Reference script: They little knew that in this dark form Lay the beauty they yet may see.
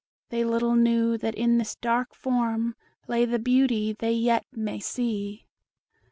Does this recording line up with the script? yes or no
yes